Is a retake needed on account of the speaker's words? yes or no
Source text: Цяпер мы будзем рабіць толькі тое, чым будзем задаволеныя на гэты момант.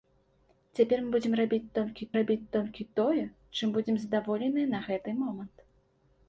yes